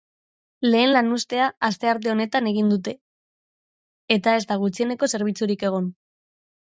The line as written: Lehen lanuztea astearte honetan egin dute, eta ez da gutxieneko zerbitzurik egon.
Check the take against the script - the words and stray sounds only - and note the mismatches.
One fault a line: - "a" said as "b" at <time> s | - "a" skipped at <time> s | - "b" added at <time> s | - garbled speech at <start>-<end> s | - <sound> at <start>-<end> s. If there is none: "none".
none